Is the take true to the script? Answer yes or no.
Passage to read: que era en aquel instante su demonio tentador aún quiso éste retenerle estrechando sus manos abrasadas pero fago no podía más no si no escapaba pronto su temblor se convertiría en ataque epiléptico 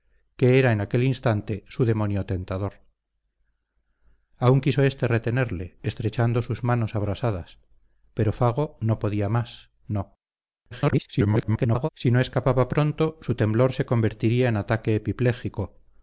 no